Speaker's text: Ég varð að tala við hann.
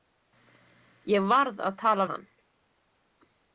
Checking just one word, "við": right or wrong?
wrong